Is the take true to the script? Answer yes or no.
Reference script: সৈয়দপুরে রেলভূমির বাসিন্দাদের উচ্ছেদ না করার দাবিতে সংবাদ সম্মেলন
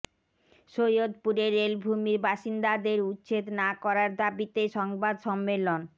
yes